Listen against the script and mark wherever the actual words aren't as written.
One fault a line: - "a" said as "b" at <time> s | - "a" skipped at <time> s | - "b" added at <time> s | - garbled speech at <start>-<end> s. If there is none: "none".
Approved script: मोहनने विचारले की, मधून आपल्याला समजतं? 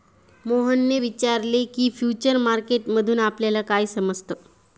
- "फ्युचर मार्केट" added at 1.9 s
- "काय" added at 3.6 s